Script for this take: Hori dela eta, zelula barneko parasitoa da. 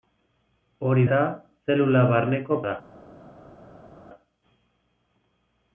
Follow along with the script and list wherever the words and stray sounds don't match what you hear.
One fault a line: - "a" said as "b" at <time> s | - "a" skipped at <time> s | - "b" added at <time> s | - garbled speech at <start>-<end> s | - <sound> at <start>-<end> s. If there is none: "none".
- "dela" skipped at 1.0 s
- "parasitoa" skipped at 2.6 s